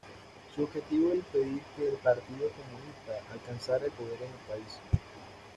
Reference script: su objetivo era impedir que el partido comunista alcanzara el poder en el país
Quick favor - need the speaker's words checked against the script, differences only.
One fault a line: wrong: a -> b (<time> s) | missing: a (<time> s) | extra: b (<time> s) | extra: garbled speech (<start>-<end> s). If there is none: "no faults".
no faults